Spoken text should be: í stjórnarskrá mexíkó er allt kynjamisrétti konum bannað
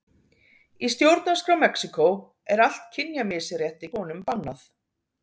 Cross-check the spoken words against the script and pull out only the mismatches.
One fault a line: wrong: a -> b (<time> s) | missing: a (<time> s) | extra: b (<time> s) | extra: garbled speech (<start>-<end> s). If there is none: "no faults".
no faults